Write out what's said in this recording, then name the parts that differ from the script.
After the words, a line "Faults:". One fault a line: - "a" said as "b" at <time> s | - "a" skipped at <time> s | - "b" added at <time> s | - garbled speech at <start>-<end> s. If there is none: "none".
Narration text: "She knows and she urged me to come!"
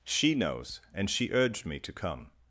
"She knows and she urged me to come!"
Faults:
none